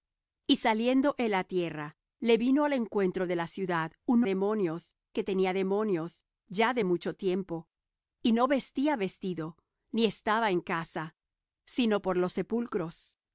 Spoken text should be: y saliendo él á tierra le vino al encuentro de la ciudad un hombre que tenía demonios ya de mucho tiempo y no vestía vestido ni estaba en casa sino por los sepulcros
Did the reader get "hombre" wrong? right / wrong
wrong